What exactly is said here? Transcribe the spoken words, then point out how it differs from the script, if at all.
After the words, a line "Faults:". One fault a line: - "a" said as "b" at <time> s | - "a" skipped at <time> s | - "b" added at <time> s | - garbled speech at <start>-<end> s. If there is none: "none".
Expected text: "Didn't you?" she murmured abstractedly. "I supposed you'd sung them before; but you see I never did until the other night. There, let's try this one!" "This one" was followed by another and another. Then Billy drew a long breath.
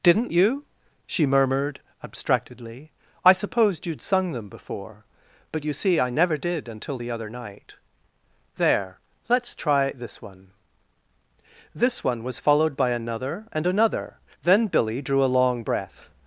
"Didn't you?" she murmured abstractedly. "I supposed you'd sung them before; but you see I never did until the other night. There, let's try this one!" "This one" was followed by another and another. Then Billy drew a long breath.
Faults:
none